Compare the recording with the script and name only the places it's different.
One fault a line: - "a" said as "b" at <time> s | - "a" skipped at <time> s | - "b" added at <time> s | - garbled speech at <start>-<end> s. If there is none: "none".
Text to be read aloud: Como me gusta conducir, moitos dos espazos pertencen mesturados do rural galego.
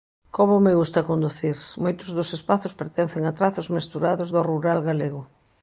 - "a trazos" added at 3.3 s